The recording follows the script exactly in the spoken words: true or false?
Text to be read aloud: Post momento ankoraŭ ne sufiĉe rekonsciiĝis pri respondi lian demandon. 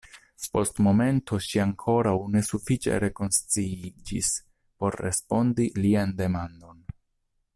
false